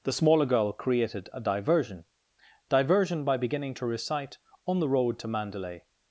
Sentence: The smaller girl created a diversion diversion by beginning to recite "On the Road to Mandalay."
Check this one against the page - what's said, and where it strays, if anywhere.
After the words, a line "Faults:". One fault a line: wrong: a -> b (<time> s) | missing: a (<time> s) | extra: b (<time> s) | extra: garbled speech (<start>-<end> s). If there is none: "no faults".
The smaller girl created a diversion diversion by beginning to recite "On the Road to Mandalay."
Faults:
no faults